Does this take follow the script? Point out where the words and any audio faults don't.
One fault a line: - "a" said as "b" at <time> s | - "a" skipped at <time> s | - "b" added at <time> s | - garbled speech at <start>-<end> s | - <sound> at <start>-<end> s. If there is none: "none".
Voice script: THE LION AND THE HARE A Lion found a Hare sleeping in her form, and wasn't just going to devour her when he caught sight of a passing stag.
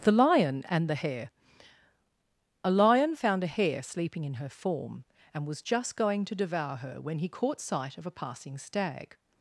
- "wasn't" said as "was" at 5.4 s